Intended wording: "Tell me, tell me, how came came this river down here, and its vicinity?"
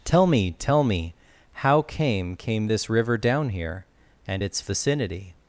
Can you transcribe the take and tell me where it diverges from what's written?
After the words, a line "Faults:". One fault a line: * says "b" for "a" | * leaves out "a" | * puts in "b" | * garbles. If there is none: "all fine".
"Tell me, tell me, how came came this river down here, and its vicinity?"
Faults:
all fine